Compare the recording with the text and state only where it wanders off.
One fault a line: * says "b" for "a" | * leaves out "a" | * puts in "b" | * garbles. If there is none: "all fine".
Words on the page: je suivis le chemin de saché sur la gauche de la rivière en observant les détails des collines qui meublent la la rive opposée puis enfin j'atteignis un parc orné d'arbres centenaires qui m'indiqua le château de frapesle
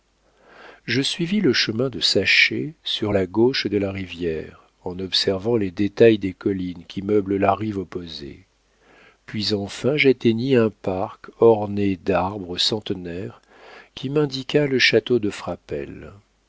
* leaves out "la"